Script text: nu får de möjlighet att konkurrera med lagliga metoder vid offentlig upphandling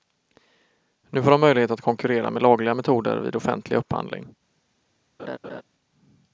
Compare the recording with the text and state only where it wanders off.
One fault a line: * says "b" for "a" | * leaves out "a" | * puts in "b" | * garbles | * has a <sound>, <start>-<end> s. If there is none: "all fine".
* has a laugh, 5.2-5.6 s